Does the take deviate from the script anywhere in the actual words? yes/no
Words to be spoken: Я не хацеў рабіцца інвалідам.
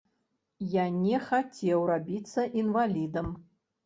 no